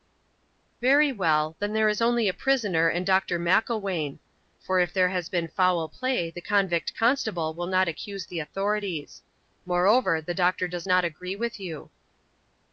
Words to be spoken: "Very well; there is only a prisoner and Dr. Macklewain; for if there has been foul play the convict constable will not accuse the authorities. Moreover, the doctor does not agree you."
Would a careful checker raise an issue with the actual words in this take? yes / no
yes